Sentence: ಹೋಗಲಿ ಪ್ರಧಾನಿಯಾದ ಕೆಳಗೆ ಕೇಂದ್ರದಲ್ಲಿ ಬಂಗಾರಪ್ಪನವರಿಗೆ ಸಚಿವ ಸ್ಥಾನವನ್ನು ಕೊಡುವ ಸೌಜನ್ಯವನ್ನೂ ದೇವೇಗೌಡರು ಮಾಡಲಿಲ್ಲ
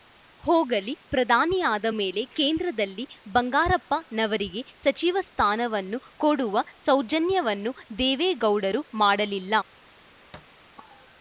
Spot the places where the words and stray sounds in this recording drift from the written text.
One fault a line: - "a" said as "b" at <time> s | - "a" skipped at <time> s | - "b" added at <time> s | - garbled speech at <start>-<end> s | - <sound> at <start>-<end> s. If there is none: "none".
- "ಕೆಳಗೆ" said as "ಮೇಲೆ" at 2.0 s
- thud at 10.3-10.6 s